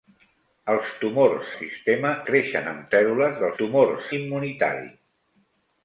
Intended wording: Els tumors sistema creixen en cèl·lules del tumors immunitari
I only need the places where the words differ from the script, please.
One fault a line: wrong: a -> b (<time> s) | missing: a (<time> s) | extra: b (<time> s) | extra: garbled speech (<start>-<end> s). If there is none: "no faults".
no faults